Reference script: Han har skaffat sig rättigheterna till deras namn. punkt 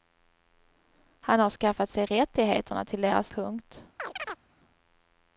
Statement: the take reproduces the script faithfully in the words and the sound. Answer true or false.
false